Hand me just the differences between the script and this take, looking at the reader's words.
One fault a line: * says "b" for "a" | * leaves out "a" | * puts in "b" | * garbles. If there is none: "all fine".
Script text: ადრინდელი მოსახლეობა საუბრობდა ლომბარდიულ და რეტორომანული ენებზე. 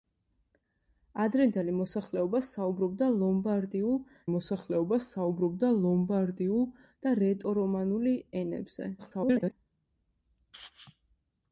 * puts in "მოსახლეობა საუბრობდა ლომბარდიულ"
* garbles